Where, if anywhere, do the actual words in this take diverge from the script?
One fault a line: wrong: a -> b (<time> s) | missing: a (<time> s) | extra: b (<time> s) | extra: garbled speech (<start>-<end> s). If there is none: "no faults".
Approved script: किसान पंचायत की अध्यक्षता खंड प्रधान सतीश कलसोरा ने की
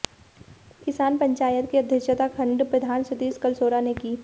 no faults